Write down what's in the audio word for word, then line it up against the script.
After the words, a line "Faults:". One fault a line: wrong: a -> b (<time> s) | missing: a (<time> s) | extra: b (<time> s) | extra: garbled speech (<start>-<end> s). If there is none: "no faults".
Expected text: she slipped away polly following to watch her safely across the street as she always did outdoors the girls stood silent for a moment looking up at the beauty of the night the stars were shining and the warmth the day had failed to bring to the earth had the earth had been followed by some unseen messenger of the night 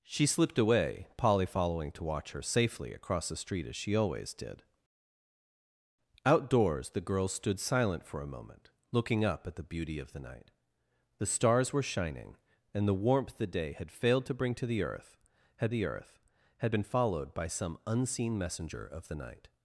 she slipped away polly following to watch her safely across the street as she always did outdoors the girls stood silent for a moment looking up at the beauty of the night the stars were shining and the warmth the day had failed to bring to the earth had the earth had been followed by some unseen messenger of the night
Faults:
no faults